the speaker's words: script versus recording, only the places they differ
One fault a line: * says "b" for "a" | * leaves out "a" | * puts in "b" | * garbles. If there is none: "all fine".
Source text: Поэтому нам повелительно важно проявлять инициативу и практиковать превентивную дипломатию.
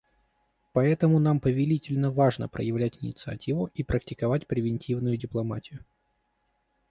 all fine